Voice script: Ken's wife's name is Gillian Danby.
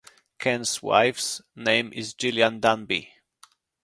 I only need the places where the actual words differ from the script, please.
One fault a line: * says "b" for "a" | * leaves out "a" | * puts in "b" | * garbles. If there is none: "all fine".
all fine